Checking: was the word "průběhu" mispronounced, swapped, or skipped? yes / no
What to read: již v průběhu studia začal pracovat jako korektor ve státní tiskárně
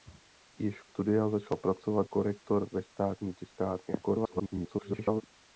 yes